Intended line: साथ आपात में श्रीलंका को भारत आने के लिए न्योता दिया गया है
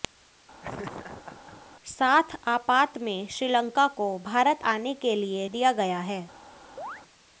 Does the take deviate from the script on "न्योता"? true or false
true